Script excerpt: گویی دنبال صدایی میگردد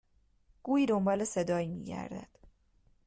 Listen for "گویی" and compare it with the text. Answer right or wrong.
right